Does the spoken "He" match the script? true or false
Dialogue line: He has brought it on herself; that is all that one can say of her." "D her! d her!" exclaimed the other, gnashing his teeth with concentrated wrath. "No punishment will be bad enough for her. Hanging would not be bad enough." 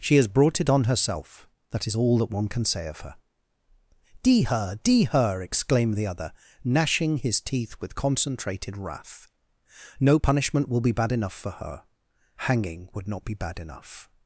false